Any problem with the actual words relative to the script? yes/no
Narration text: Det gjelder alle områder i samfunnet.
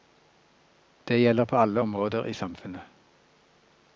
yes